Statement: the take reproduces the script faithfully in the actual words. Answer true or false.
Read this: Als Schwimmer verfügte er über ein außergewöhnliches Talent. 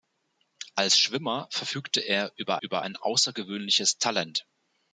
false